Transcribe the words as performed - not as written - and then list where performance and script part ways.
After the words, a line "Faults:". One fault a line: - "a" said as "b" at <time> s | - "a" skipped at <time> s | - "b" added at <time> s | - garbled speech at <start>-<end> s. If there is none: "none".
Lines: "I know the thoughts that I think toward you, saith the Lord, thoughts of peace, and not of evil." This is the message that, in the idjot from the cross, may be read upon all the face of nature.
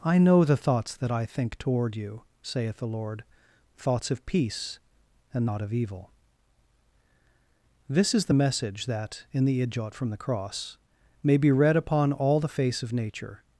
"I know the thoughts that I think toward you, saith the Lord, thoughts of peace, and not of evil." This is the message that, in the idjot from the cross, may be read upon all the face of nature.
Faults:
none